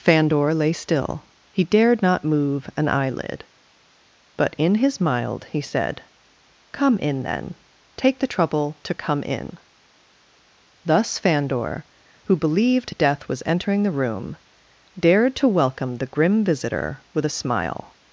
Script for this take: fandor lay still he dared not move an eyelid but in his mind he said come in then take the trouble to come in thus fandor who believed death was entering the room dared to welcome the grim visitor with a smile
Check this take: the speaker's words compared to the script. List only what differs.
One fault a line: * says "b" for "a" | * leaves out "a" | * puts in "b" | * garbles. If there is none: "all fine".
* says "mild" for "mind"